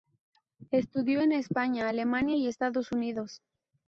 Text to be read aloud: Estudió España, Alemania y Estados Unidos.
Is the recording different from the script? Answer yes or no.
yes